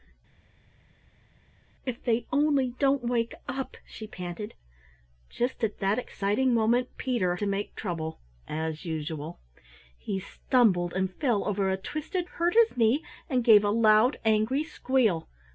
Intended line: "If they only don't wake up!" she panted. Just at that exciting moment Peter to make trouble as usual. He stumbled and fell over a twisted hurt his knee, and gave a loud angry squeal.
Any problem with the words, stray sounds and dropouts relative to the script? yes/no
no